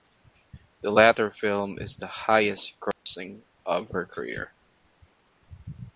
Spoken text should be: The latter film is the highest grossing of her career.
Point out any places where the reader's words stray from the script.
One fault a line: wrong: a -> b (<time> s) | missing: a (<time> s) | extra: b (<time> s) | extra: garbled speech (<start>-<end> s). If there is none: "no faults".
no faults